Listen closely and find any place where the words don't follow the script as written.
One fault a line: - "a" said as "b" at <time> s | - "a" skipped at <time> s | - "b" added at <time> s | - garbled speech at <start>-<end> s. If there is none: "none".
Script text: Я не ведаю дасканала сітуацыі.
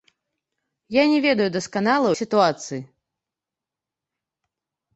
none